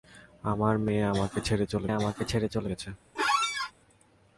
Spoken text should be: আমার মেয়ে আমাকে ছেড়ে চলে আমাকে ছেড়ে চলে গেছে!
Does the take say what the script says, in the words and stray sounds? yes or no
no